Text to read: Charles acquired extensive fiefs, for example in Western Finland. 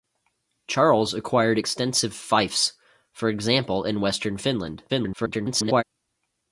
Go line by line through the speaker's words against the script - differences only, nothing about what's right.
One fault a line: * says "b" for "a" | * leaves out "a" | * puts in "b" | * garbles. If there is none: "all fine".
* garbles